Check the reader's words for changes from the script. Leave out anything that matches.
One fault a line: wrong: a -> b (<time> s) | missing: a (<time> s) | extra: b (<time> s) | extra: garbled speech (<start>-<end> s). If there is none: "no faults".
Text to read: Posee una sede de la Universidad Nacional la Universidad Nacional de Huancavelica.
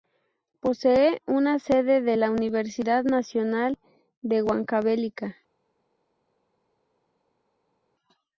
missing: la Universidad Nacional (3.8 s)